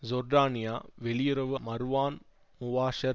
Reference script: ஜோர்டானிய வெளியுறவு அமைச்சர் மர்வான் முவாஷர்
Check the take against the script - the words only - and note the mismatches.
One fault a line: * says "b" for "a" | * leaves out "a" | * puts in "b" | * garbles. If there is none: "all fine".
* leaves out "அமைச்சர்"